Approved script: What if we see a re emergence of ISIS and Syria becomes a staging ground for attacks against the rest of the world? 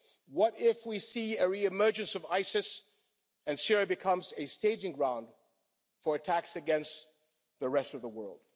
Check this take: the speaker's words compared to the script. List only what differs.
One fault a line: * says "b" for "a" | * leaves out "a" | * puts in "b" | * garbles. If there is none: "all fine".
all fine